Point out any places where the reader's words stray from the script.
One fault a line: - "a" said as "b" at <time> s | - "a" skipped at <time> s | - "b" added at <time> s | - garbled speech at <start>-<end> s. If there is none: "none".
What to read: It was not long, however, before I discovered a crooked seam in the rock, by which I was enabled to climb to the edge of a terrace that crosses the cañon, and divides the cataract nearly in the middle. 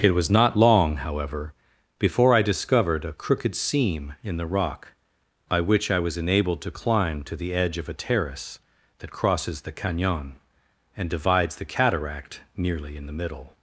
none